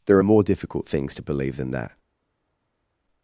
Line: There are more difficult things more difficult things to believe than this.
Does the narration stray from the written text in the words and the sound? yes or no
yes